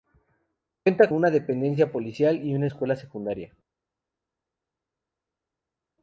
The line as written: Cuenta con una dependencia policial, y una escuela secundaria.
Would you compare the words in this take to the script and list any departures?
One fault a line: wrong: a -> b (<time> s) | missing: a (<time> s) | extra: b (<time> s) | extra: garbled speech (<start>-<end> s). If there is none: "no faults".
missing: con (1.1 s)